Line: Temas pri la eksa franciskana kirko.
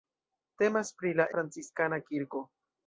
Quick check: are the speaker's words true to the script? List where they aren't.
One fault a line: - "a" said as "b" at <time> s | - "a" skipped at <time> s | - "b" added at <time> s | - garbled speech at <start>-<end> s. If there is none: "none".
- "eksa" skipped at 1.3 s